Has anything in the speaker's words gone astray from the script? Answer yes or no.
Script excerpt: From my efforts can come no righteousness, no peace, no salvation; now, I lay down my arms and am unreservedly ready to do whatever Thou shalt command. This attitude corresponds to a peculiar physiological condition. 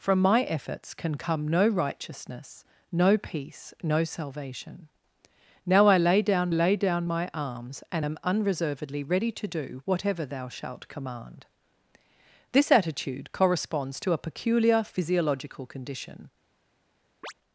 yes